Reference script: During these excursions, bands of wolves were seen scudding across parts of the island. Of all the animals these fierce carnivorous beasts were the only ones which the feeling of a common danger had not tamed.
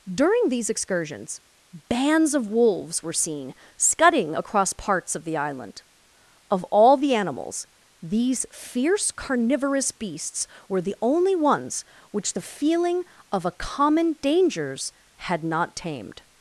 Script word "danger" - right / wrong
wrong